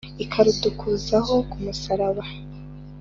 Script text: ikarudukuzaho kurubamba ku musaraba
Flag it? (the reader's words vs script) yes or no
yes